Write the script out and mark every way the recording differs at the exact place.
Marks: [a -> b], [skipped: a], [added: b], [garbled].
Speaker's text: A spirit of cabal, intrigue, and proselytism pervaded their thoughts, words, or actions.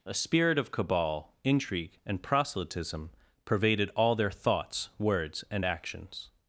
A spirit of cabal, intrigue, and proselytism pervaded [added: all] their thoughts, words, [or -> and] actions.